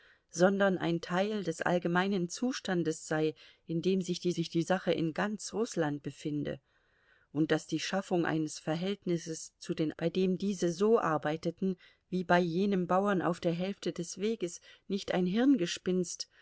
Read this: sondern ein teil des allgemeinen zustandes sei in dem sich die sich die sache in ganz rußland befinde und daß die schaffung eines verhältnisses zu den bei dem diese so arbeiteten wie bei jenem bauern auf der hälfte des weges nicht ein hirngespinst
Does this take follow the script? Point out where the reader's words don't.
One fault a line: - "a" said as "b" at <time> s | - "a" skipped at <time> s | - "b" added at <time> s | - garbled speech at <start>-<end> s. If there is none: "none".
none